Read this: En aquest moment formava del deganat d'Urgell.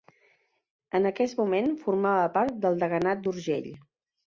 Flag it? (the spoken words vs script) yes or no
yes